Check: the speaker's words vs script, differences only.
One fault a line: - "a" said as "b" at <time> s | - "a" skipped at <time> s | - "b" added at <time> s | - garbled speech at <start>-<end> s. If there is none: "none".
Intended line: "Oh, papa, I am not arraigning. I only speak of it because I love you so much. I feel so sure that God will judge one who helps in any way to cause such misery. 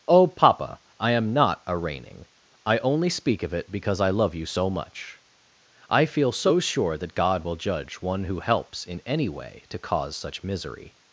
none